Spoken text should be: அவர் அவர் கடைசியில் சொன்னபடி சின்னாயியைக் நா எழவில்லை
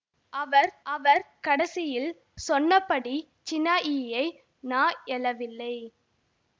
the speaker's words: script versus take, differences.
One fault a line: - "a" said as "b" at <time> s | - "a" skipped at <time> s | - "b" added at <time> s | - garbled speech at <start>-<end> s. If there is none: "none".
none